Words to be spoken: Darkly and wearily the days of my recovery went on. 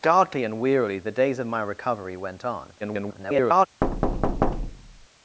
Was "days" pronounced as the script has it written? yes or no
yes